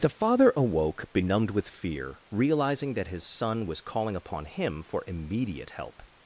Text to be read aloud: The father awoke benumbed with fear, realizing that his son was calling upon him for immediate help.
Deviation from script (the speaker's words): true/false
false